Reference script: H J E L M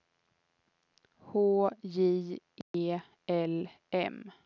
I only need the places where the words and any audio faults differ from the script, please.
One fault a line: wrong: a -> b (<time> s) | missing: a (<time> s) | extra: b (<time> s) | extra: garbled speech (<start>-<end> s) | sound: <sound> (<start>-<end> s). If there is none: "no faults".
sound: dropout (2.6-2.7 s)